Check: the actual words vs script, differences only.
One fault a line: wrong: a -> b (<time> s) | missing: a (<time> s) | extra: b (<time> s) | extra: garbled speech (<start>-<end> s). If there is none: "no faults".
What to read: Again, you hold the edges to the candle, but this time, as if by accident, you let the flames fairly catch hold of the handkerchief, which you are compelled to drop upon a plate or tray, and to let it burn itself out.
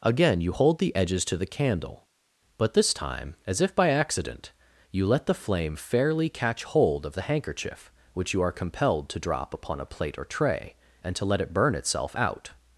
wrong: flames -> flame (5.3 s)